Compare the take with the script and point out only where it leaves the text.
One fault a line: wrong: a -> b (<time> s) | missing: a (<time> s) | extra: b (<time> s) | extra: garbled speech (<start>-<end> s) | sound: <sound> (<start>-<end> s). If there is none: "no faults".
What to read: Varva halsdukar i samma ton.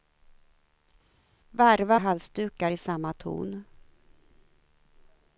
no faults